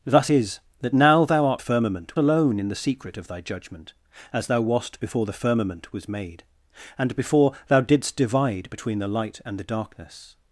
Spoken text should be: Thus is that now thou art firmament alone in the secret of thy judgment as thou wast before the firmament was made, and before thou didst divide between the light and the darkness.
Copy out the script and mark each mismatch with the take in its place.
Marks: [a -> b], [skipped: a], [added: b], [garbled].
Thus is that now thou art firmament alone in the secret of thy judgment as thou wast before the firmament was made, and before thou didst divide between the light and the darkness.